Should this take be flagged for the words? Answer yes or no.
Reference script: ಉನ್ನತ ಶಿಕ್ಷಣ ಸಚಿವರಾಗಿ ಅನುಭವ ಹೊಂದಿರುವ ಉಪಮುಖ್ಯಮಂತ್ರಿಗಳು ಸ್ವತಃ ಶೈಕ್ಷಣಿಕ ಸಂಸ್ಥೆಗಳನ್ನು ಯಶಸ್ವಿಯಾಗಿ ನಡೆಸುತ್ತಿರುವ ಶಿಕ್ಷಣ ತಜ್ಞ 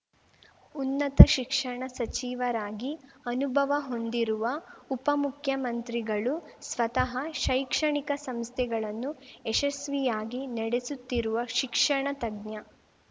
no